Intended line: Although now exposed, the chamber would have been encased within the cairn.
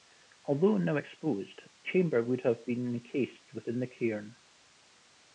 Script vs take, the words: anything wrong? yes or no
yes